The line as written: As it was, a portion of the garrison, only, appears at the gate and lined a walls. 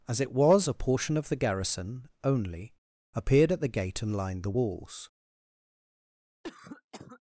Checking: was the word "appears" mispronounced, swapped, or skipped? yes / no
yes